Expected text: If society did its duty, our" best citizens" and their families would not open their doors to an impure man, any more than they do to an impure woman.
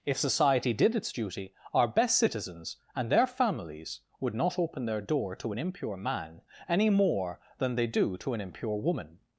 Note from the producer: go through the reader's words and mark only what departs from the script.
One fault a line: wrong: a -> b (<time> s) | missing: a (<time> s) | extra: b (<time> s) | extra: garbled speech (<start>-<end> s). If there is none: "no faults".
wrong: doors -> door (5.0 s)